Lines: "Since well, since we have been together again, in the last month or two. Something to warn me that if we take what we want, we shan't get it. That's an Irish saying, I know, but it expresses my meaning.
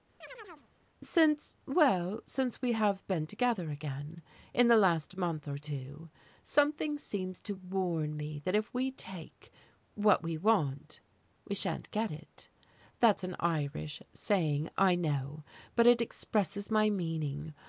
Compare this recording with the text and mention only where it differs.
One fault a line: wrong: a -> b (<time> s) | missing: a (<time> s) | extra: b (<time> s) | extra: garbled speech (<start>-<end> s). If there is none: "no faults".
extra: seems (7.0 s)